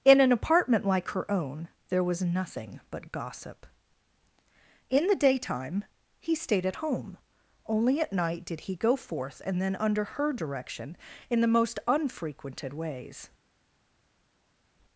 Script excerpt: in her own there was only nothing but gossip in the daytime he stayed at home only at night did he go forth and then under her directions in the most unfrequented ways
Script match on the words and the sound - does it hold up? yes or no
no